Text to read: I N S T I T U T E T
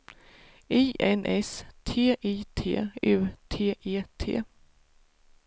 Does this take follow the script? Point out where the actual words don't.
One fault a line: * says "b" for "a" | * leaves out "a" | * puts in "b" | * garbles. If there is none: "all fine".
all fine